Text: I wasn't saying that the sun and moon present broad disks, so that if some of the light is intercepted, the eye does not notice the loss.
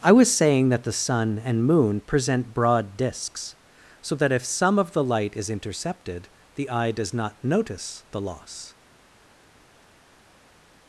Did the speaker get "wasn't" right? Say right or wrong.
wrong